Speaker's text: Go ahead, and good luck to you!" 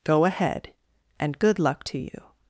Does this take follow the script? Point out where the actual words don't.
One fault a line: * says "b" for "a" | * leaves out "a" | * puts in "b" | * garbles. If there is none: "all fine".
all fine